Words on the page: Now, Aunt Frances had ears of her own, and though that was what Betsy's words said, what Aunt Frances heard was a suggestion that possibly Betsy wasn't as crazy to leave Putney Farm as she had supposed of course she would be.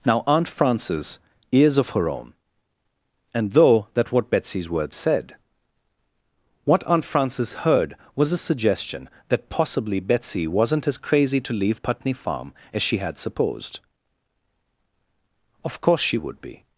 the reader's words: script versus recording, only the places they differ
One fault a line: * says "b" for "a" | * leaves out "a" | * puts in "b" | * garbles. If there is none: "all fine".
* leaves out "had"
* leaves out "was"